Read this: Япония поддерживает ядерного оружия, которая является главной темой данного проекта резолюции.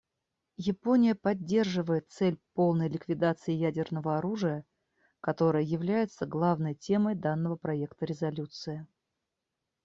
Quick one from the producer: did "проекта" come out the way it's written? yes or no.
yes